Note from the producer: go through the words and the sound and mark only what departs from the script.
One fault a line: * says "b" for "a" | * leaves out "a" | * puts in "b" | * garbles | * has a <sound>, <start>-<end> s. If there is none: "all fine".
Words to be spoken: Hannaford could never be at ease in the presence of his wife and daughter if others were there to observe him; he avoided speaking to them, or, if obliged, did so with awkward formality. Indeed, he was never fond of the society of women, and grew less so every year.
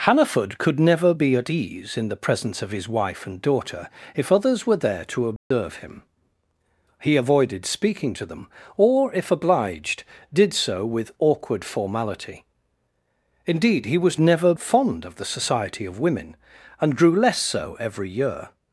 * has a dropout, 5.4-5.5 s